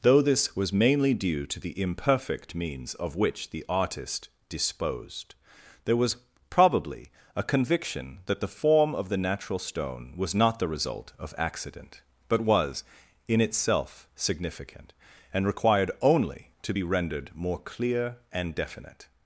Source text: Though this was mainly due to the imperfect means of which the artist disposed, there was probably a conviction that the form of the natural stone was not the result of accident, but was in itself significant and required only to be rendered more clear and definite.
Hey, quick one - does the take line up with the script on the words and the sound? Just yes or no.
yes